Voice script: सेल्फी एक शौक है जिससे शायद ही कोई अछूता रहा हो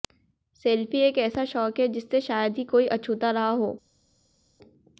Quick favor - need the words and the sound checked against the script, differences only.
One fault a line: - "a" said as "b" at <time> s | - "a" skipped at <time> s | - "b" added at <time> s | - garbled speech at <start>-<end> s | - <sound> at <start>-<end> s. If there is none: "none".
- "ऐसा" added at 1.2 s